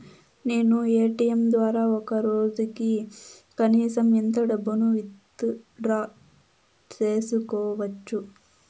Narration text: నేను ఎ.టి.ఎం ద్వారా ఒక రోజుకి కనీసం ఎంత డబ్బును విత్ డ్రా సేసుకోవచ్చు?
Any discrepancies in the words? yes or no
no